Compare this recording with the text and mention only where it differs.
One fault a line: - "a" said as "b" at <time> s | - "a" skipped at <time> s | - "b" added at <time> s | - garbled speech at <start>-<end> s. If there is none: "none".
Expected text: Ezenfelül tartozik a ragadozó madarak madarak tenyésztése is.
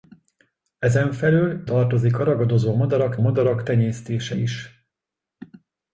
none